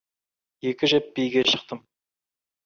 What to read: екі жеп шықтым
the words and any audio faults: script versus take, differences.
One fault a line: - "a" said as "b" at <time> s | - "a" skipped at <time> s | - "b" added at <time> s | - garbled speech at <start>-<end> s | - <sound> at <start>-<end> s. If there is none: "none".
- "биге" added at 1.2 s